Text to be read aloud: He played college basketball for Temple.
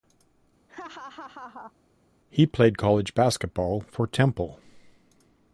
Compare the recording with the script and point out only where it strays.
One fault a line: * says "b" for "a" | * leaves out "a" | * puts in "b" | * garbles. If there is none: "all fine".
all fine